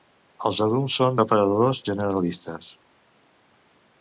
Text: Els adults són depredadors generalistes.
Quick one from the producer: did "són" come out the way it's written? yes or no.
yes